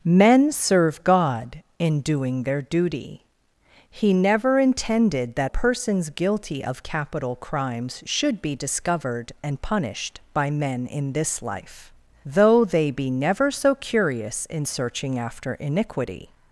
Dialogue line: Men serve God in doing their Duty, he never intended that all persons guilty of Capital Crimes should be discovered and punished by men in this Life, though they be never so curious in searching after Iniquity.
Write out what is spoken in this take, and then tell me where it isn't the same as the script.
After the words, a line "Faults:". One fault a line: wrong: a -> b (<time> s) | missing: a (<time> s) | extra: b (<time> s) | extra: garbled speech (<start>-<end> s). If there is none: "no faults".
Men serve God in doing their Duty, he never intended that persons guilty of Capital Crimes should be discovered and punished by men in this Life, though they be never so curious in searching after Iniquity.
Faults:
missing: all (5.5 s)